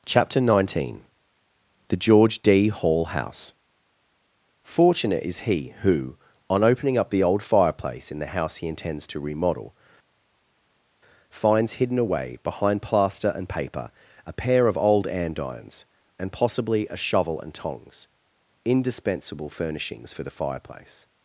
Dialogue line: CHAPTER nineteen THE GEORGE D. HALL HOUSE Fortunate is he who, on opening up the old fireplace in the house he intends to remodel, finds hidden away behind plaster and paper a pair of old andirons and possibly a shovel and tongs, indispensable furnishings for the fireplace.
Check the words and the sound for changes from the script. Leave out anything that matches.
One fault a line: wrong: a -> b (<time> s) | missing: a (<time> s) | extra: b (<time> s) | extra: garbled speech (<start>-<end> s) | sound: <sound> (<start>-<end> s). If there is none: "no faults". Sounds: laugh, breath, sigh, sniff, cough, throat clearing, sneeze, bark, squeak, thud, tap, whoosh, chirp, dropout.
no faults